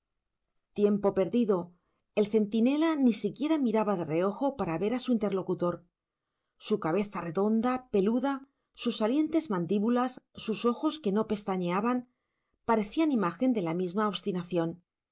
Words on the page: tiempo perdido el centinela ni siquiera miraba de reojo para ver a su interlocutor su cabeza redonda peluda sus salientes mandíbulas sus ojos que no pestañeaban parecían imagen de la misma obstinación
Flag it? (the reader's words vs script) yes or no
no